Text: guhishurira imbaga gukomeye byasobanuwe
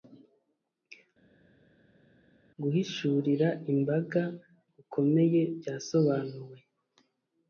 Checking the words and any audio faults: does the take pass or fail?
pass